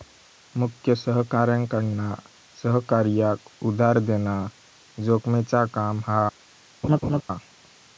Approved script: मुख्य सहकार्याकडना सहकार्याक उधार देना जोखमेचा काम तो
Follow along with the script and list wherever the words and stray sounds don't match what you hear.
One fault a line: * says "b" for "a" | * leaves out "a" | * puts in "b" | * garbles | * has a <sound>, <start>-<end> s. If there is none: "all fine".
* says "हा" for "तो"
* has a laugh, 6.8-7.2 s